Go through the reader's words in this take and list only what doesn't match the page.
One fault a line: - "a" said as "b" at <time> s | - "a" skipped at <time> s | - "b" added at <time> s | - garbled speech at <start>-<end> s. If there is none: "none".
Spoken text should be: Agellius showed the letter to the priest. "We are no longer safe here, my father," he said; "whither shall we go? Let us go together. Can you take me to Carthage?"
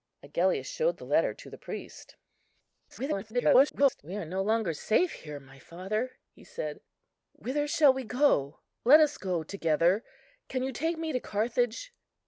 - garbled speech at 2.9-4.0 s